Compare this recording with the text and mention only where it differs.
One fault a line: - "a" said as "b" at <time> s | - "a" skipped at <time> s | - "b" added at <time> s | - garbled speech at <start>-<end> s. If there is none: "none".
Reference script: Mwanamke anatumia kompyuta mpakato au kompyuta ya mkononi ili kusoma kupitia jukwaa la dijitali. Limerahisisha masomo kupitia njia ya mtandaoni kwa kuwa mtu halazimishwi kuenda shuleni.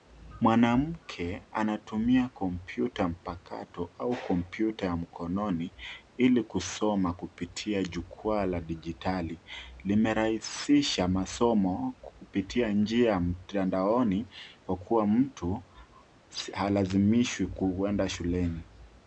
none